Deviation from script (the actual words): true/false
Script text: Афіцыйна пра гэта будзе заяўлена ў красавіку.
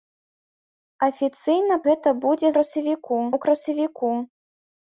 true